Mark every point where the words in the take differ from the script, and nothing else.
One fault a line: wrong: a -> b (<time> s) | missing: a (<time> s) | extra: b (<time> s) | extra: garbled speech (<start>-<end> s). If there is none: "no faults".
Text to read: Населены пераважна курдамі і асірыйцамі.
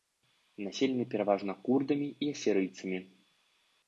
no faults